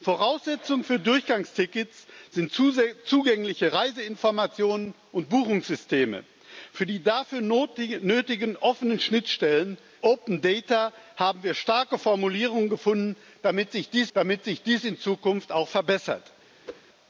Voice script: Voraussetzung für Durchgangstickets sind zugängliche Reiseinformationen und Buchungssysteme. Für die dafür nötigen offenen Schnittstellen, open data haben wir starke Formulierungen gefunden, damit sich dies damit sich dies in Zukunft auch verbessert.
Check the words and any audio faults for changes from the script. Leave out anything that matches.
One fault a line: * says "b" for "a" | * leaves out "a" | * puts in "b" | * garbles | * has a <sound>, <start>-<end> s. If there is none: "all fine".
* has a whoosh, 16.6-16.8 s